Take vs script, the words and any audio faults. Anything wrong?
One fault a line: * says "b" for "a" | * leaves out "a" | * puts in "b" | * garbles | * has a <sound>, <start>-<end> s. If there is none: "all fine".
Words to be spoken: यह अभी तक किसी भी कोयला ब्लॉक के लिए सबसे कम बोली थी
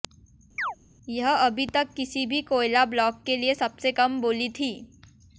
* has a chirp, 0.6-0.8 s